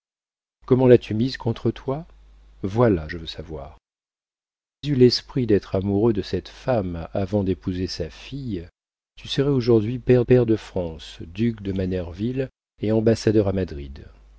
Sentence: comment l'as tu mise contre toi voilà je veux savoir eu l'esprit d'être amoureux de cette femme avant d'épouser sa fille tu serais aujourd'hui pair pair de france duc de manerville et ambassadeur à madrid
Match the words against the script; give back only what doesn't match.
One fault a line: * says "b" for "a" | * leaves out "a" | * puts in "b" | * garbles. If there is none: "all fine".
all fine